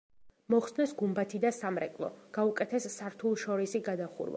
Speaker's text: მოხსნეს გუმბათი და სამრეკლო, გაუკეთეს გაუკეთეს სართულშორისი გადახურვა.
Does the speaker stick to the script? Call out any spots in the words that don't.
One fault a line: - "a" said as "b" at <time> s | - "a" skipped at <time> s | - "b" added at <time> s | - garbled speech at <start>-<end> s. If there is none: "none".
- "გაუკეთეს" skipped at 2.9 s